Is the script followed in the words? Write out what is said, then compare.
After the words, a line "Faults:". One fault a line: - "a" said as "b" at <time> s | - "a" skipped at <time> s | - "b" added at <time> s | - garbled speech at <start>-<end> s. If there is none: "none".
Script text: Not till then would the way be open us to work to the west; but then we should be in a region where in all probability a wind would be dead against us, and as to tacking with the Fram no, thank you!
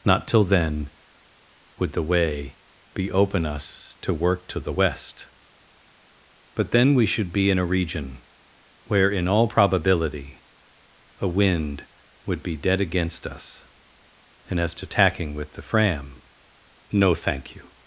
Not till then would the way be open us to work to the west; but then we should be in a region where in all probability a wind would be dead against us, and as to tacking with the Fram no, thank you!
Faults:
none